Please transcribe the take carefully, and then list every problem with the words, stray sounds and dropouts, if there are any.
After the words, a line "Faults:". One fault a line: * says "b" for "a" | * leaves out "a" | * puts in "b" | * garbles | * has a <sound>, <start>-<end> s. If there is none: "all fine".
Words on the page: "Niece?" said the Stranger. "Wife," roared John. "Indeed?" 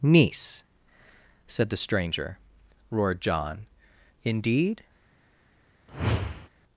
"Niece?" said the Stranger," "Roared John. "Indeed?"
Faults:
* leaves out "Wife"
* has a whoosh, 5.9-6.5 s